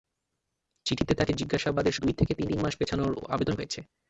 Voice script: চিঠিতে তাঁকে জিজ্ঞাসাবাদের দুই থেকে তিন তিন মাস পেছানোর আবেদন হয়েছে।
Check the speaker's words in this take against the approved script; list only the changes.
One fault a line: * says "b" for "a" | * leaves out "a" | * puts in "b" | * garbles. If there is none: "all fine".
all fine